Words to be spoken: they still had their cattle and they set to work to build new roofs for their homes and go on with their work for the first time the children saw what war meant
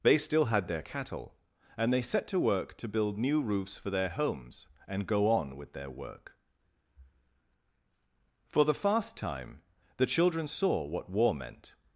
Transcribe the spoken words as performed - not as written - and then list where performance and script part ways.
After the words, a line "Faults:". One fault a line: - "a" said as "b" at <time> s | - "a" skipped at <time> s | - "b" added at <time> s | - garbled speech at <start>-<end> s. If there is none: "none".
they still had their cattle and they set to work to build new roofs for their homes and go on with their work for the fast time the children saw what war meant
Faults:
- "first" said as "fast" at 8.7 s